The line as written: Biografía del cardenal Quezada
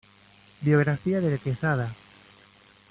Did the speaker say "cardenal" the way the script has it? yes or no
no